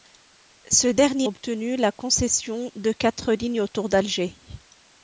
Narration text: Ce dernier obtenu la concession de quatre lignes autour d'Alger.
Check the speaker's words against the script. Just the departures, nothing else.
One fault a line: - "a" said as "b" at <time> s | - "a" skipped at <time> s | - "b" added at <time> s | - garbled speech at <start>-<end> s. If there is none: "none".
none